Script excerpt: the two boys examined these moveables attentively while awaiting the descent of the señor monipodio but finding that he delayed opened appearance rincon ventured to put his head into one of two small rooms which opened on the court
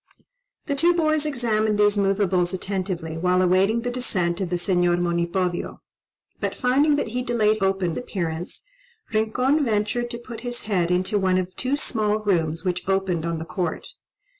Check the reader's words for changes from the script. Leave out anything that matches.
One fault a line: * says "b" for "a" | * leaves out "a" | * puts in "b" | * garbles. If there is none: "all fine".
all fine